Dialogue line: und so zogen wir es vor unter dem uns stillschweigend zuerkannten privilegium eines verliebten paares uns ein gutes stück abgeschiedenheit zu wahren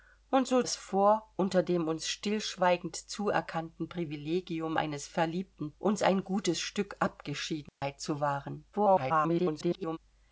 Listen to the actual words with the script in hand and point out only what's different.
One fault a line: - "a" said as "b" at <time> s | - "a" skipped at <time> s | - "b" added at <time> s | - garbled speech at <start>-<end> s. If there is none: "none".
- "zogen wir" skipped at 0.6 s
- "paares" skipped at 5.7 s
- garbled speech at 8.7-10.0 s